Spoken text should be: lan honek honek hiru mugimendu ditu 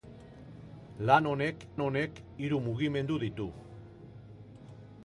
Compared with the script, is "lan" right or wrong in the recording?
right